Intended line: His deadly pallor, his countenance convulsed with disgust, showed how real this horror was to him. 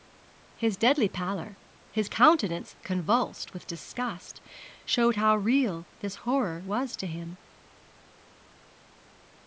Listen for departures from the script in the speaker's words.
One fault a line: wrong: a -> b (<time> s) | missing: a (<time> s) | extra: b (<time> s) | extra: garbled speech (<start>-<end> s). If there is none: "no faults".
no faults